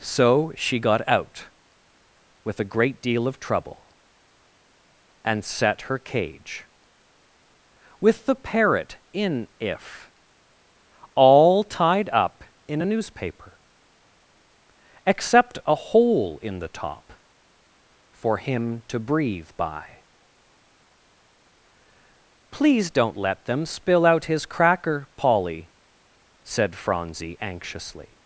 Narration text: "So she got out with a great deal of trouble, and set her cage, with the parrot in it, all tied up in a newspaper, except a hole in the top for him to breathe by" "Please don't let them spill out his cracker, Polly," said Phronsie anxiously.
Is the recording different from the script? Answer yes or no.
yes